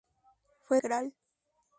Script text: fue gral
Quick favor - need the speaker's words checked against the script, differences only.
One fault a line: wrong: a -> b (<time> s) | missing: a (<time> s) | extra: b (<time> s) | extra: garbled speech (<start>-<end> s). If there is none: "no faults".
no faults